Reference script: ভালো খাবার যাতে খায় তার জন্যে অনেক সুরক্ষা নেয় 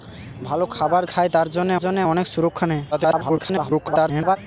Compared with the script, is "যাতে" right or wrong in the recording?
wrong